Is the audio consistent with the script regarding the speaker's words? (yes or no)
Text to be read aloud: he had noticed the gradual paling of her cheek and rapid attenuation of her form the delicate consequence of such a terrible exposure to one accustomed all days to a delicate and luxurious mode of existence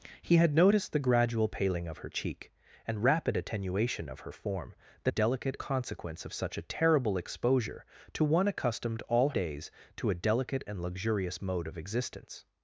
yes